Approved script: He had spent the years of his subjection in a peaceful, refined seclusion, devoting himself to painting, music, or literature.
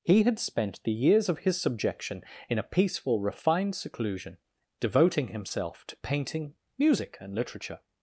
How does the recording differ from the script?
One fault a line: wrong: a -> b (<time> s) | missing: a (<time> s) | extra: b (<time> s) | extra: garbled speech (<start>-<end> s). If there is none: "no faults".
wrong: or -> and (7.2 s)